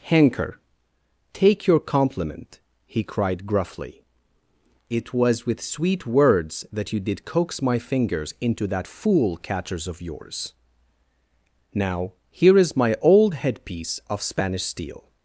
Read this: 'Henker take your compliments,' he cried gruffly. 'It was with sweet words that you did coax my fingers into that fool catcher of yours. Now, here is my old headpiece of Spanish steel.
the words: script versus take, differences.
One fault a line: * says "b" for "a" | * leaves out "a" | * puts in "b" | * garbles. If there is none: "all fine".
* says "compliment" for "compliments"
* says "catchers" for "catcher"